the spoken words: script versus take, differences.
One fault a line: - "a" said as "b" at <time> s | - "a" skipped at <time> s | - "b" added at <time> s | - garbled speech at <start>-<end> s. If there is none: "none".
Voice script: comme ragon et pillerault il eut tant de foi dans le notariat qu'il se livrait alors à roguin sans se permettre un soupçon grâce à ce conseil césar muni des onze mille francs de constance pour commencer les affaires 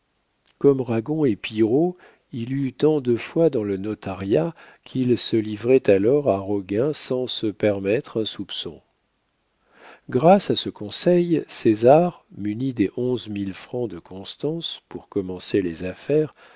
none